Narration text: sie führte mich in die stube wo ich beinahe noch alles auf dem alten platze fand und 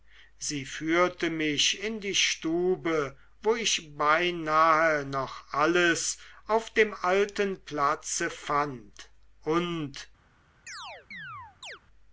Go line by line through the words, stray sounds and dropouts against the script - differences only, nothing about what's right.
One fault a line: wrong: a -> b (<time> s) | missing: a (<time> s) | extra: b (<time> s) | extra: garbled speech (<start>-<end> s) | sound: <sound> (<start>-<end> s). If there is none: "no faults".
sound: chirp (10.7-11.8 s)